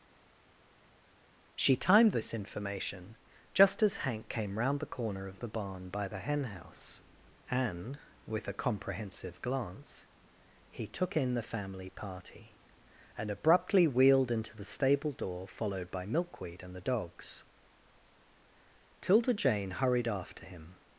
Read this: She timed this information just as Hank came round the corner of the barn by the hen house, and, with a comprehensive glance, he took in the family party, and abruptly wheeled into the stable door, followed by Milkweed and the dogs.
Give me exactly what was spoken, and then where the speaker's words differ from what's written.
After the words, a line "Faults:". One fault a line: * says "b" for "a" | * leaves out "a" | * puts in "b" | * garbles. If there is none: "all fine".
She timed this information just as Hank came round the corner of the barn by the hen house, and, with a comprehensive glance, he took in the family party, and abruptly wheeled into the stable door, followed by Milkweed and the dogs. 'Tilda Jane hurried after him
Faults:
* puts in "Tilda Jane hurried after him"